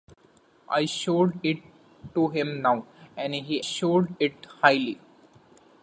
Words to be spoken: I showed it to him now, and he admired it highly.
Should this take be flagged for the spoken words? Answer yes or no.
yes